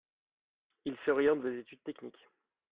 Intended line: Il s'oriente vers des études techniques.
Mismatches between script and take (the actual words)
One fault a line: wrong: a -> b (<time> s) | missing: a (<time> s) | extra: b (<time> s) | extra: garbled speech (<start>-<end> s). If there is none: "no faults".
missing: vers (1.4 s)